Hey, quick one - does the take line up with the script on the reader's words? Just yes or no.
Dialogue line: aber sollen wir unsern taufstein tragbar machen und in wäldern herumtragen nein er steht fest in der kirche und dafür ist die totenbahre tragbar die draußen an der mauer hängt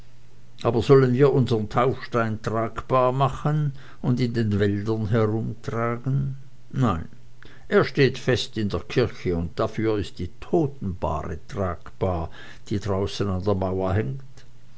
no